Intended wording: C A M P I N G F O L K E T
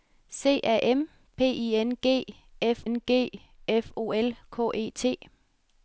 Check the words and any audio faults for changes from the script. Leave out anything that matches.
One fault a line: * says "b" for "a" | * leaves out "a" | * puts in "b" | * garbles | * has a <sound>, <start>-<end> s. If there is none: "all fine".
* puts in "N G F"